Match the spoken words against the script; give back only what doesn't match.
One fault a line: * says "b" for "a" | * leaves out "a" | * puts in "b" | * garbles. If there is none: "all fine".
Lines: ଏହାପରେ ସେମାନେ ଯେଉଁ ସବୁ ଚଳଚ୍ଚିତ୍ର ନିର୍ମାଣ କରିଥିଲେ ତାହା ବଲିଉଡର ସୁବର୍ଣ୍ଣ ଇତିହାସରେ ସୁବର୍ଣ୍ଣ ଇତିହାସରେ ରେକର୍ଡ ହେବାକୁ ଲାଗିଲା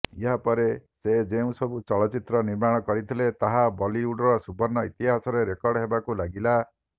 * says "ସେ" for "ସେମାନେ"
* leaves out "ସୁବର୍ଣ୍ଣ ଇତିହାସରେ"